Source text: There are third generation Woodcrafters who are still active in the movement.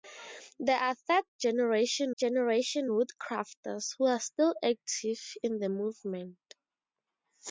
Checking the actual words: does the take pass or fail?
fail